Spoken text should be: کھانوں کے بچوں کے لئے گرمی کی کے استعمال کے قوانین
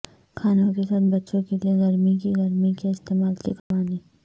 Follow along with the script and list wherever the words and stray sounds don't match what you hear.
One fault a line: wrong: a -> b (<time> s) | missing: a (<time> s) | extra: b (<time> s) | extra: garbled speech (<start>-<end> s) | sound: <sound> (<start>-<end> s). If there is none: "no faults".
extra: ساتھ (0.8 s)
extra: گرمی (2.4 s)
sound: dropout (3.6-3.7 s)